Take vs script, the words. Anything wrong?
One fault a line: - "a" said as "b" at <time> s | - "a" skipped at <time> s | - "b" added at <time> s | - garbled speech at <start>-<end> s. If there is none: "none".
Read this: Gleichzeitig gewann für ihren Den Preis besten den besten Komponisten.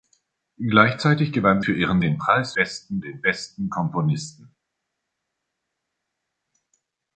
none